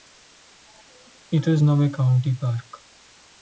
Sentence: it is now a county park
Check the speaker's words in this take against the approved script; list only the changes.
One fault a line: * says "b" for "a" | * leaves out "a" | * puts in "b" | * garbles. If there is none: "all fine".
all fine